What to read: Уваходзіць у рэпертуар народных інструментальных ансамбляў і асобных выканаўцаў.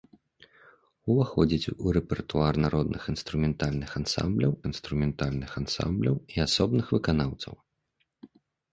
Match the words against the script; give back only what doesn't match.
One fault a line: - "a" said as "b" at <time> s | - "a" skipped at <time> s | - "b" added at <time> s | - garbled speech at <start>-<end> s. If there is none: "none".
- "інструментальных ансамбляў" added at 4.7 s